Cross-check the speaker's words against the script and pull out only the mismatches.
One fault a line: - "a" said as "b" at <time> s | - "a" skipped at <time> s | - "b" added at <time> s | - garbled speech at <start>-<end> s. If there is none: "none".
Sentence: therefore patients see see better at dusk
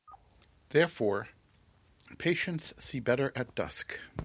- "see" skipped at 3.0 s